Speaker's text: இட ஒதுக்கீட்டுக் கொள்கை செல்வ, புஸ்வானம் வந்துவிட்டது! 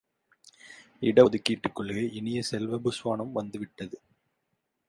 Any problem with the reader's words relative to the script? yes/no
yes